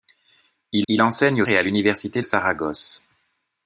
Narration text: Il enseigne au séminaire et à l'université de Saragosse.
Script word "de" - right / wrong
wrong